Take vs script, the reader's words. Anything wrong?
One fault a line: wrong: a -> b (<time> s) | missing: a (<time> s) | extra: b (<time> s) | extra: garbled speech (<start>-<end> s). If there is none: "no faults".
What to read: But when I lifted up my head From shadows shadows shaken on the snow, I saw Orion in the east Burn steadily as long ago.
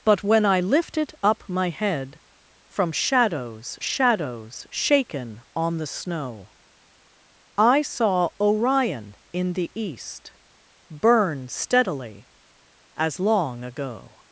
no faults